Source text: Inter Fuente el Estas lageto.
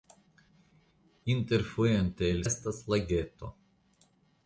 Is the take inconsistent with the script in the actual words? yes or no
no